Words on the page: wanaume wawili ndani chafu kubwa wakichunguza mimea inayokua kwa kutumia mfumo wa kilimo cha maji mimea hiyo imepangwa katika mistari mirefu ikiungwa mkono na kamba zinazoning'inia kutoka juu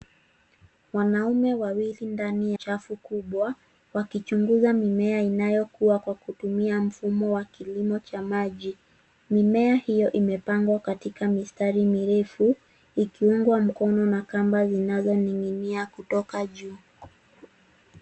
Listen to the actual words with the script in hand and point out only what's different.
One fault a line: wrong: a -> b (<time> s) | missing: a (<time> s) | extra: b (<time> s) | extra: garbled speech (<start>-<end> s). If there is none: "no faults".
no faults